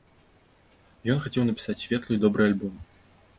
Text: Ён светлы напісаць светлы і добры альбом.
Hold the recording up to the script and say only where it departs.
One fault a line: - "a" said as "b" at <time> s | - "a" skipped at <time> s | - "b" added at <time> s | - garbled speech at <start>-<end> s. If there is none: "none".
- "светлы" said as "хацеў" at 1.2 s